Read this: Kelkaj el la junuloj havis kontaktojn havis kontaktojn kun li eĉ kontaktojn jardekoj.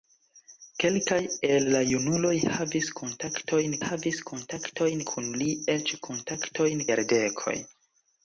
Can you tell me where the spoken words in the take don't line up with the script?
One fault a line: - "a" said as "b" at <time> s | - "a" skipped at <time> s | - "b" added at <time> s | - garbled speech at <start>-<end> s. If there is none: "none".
none